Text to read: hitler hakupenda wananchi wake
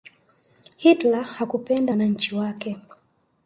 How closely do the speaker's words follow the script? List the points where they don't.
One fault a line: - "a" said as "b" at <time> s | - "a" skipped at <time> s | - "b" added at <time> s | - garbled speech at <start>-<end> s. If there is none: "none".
none